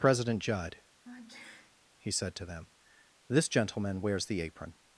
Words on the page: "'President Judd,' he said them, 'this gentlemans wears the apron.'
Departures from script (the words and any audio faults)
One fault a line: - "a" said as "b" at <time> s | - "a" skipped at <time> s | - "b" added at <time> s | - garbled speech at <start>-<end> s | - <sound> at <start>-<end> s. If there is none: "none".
- sneeze at 1.0-1.8 s
- "to" added at 2.3 s
- "gentlemans" said as "gentleman" at 3.5 s